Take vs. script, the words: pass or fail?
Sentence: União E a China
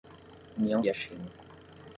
pass